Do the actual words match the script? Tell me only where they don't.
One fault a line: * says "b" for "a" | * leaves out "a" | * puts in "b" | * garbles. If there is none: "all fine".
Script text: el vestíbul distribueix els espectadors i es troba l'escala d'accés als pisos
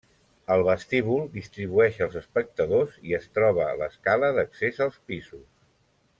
all fine